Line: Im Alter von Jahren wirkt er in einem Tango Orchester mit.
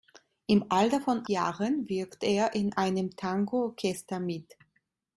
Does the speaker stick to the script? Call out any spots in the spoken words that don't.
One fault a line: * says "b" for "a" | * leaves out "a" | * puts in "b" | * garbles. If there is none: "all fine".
all fine